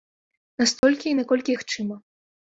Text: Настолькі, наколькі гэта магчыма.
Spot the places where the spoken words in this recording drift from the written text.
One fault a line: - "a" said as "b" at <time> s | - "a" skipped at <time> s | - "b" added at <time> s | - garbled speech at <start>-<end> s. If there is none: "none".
- "гэта" skipped at 1.6 s